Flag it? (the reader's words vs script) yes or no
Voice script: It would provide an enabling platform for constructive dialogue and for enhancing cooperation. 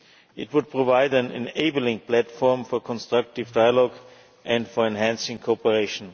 no